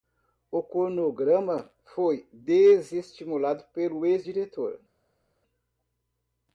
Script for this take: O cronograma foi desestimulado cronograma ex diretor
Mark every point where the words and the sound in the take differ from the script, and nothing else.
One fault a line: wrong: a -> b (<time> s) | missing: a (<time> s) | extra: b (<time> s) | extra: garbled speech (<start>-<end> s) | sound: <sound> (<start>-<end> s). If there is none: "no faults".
wrong: cronograma -> pelo (3.6 s)